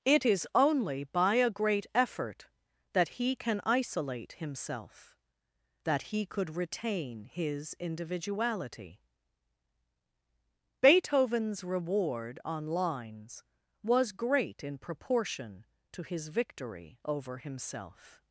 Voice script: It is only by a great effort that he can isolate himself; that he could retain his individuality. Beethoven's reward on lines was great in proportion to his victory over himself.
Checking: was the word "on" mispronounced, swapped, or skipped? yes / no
no